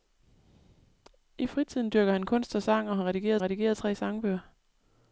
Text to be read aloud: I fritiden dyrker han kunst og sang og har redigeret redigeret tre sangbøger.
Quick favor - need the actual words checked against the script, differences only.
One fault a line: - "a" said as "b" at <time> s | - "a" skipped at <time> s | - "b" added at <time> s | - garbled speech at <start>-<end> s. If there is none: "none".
none